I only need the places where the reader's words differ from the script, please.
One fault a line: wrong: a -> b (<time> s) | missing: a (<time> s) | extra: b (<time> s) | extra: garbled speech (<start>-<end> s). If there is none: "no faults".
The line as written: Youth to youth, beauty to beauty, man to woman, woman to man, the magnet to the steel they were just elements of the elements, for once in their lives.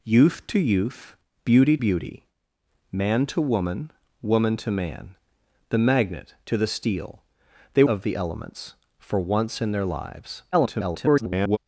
missing: to (1.8 s)
missing: were just elements (7.8 s)
extra: garbled speech (10.5-11.6 s)